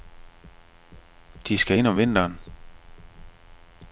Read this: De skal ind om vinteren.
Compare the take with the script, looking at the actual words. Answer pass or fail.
pass